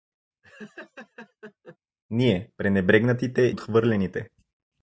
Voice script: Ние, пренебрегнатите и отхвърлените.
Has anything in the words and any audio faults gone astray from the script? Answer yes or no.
yes